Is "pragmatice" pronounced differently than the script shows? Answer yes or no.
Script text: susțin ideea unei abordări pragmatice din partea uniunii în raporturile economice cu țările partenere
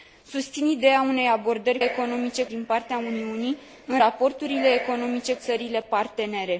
yes